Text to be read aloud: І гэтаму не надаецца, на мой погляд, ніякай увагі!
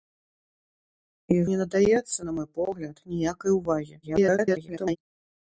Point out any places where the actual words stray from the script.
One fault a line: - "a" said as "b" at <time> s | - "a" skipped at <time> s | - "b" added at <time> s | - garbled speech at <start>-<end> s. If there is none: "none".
- "гэтаму" skipped at 1.4 s
- garbled speech at 4.0-5.0 s